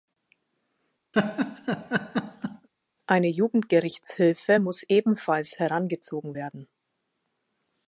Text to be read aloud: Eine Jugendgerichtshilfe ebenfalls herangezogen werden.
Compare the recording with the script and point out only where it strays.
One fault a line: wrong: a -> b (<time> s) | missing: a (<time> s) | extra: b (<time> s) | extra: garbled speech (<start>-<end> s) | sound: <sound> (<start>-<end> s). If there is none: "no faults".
sound: laugh (1.1-2.7 s)
extra: muss (4.6 s)